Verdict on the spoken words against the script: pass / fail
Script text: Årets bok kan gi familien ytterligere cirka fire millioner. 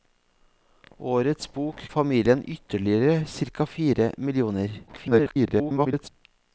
fail